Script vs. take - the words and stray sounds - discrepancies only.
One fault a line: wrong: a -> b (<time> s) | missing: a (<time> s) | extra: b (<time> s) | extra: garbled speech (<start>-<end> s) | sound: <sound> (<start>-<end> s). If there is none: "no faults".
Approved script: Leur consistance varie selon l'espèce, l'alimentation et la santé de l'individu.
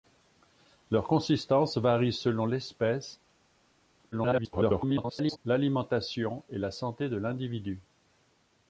extra: garbled speech (4.1-5.4 s)